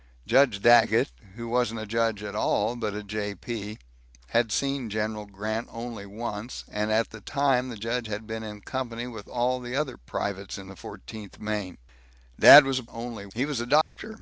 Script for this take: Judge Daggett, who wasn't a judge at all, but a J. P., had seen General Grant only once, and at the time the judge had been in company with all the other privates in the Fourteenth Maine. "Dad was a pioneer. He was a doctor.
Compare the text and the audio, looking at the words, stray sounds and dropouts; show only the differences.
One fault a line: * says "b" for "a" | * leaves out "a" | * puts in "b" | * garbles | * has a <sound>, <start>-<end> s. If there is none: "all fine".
* says "only" for "pioneer"
* has a dropout, 13.8-14.0 s